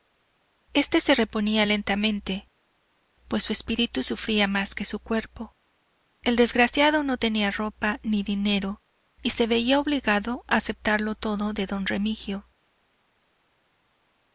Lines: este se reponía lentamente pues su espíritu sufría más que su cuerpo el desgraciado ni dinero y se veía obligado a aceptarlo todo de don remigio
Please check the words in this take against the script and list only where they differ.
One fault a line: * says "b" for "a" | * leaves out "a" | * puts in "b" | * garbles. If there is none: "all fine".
* puts in "no tenía ropa"